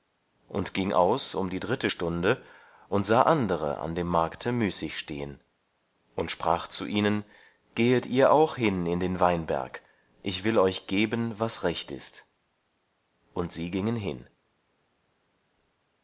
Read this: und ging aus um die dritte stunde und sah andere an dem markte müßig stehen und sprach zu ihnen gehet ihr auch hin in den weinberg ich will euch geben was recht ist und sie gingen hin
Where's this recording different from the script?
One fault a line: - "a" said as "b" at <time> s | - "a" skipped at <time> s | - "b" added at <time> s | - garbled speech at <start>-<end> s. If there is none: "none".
none